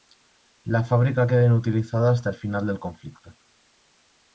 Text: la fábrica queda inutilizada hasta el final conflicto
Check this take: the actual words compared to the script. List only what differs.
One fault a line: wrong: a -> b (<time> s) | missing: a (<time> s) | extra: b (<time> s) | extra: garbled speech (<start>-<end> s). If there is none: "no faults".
extra: del (2.6 s)